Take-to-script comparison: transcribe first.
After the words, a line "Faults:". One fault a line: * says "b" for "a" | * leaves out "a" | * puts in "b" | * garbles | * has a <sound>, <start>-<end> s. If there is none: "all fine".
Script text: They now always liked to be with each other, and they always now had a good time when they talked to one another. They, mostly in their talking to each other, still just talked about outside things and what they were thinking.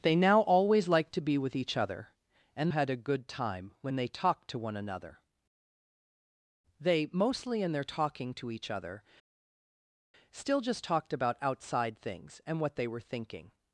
They now always liked to be with each other, and had a good time when they talked to one another. They, mostly in their talking to each other, still just talked about outside things and what they were thinking.
Faults:
* leaves out "they always now"